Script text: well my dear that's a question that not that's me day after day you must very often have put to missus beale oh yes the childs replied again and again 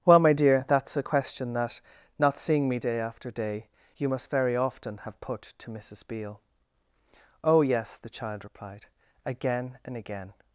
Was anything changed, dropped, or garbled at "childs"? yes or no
yes